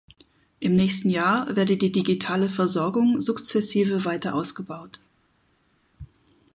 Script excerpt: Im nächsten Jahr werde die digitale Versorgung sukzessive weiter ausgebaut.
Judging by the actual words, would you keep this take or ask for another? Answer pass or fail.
pass